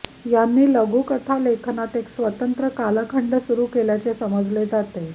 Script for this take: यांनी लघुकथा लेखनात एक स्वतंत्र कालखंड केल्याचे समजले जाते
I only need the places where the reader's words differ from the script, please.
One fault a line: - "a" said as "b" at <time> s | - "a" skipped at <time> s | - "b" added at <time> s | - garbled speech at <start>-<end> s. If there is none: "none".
- "सुरू" added at 3.4 s